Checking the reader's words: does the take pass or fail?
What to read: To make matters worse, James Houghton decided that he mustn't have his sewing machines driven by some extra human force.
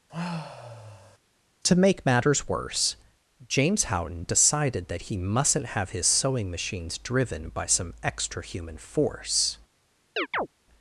pass